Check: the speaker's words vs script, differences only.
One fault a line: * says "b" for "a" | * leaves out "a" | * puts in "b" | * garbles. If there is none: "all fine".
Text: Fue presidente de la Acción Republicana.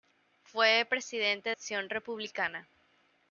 * leaves out "de la"